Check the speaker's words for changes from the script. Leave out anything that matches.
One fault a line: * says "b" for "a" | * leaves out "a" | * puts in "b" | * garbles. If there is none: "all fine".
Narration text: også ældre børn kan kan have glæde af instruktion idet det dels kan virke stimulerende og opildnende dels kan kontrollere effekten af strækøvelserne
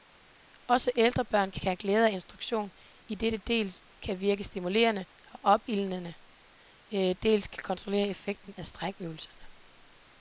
all fine